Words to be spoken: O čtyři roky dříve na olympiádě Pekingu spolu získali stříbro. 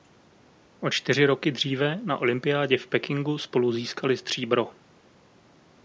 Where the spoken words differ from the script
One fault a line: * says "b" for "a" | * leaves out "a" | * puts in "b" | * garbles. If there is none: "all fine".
* puts in "v"